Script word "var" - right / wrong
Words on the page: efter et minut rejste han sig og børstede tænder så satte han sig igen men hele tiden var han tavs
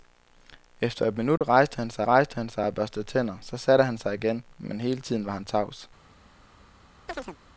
right